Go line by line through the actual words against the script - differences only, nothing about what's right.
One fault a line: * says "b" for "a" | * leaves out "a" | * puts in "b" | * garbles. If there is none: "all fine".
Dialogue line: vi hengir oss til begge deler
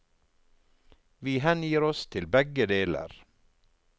all fine